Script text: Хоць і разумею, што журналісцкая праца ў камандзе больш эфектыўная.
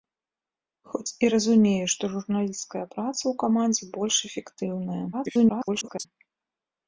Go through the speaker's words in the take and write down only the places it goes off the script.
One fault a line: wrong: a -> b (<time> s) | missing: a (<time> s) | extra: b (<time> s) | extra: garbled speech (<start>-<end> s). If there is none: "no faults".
extra: garbled speech (5.1-6.1 s)